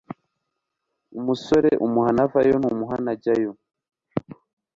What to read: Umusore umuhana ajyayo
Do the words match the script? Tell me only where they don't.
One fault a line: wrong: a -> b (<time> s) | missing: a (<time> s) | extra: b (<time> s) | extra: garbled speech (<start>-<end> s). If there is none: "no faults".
extra: avayo ntumuhana (2.2 s)